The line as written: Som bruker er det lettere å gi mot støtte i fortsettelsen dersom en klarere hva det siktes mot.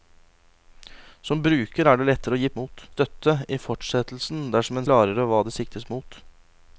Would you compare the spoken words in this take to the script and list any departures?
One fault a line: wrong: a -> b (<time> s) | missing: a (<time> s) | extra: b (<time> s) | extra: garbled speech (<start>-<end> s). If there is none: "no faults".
no faults